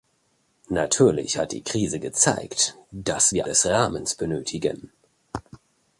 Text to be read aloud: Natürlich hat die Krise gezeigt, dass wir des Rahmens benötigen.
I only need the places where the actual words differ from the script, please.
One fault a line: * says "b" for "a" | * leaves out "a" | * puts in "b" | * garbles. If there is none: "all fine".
all fine